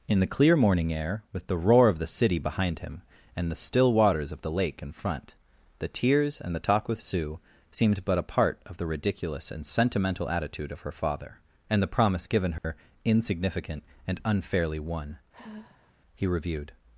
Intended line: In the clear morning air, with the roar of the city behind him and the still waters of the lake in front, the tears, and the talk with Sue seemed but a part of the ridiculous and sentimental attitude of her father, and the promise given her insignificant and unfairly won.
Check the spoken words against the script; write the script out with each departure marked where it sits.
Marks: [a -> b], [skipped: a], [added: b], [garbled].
In the clear morning air, with the roar of the city behind him and the still waters of the lake in front, the tears, and the talk with Sue seemed but a part of the ridiculous and sentimental attitude of her father, and the promise given her insignificant and unfairly won. [added: He reviewed]